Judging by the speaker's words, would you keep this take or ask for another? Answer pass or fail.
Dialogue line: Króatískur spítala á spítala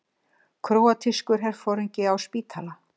fail